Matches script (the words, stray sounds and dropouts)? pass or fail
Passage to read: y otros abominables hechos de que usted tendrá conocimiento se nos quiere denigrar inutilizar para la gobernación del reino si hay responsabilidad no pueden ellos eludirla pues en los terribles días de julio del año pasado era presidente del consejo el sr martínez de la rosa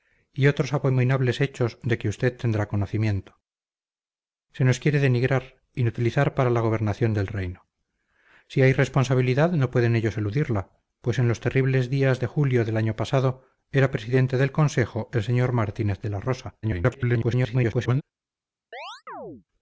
fail